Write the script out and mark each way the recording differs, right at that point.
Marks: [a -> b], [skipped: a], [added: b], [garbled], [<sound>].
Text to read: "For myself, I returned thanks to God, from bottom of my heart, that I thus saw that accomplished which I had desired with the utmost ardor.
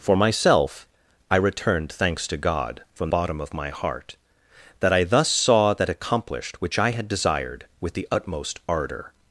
"For myself, I returned thanks to God, from bottom of my heart, that I thus saw that accomplished which I had desired with the utmost ardor.